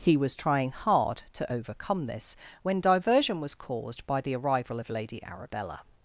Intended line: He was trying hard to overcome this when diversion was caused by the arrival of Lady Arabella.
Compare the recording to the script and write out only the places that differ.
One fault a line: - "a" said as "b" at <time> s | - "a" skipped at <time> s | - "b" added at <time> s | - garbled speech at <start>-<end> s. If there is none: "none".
none